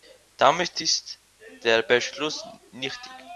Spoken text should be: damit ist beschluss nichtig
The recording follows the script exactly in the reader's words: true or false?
false